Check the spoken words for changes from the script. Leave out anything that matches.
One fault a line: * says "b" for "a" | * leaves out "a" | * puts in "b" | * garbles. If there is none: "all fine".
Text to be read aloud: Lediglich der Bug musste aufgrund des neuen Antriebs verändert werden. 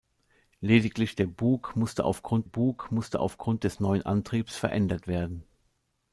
* puts in "Bug musste aufgrund"